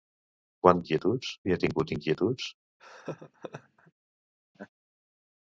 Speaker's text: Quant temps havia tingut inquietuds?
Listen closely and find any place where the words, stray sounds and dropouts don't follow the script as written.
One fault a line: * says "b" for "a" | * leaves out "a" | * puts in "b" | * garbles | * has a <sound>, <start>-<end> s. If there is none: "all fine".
* says "inquietuds" for "temps"
* has a laugh, 2.8-3.9 s
* has a laugh, 4.5-4.7 s